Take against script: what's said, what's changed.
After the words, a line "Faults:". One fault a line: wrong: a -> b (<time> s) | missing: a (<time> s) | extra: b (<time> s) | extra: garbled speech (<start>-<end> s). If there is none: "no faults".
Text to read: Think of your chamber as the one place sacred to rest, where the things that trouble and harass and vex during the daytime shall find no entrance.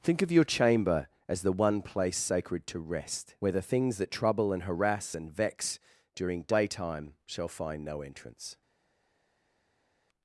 Think of your chamber as the one place sacred to rest, where the things that trouble and harass and vex during daytime shall find no entrance.
Faults:
missing: the (6.4 s)